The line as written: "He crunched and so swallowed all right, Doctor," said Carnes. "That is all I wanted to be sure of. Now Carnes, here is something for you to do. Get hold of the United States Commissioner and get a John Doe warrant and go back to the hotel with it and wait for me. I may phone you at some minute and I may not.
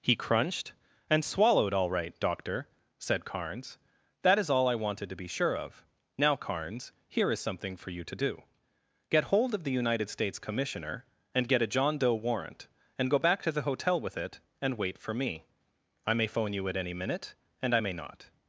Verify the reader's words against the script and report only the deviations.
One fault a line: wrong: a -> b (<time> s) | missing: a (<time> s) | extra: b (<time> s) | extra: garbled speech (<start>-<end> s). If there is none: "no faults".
missing: so (1.2 s)
wrong: some -> any (16.8 s)